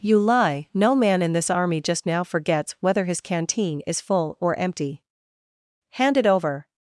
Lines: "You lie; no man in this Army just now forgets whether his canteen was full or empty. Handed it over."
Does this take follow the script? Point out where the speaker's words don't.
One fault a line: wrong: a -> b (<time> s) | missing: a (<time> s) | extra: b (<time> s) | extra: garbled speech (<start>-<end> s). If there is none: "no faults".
wrong: was -> is (3.9 s)
wrong: Handed -> Hand (5.9 s)